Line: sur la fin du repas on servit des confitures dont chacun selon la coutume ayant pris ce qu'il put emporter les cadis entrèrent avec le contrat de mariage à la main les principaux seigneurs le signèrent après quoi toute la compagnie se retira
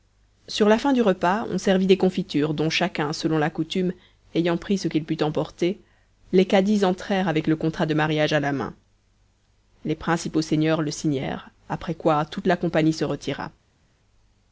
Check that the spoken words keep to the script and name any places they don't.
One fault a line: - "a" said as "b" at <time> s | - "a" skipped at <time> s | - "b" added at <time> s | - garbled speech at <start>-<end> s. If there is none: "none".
none